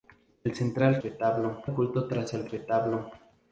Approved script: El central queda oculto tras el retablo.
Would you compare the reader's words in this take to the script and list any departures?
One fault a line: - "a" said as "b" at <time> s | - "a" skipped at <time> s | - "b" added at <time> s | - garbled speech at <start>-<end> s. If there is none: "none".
- "queda" said as "retablo" at 1.0 s